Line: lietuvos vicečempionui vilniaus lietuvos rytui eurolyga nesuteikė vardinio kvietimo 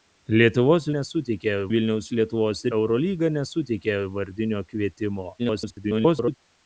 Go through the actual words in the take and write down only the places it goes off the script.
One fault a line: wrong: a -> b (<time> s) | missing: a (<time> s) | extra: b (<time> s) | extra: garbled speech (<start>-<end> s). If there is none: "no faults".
wrong: vicečempionui -> nesuteikė (1.0 s)
missing: rytui (2.6 s)
extra: garbled speech (5.4-6.4 s)